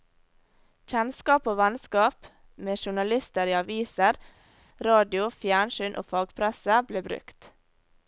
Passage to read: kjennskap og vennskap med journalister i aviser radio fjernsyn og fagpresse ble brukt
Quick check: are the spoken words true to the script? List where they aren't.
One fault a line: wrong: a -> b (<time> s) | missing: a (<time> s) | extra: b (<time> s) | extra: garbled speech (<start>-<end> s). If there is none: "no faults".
no faults